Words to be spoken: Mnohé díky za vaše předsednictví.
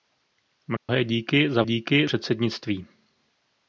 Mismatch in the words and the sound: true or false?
true